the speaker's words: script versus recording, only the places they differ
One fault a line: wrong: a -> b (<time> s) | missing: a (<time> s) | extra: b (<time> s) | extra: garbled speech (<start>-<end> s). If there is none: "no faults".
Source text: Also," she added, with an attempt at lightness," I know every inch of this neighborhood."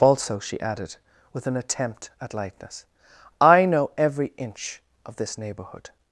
no faults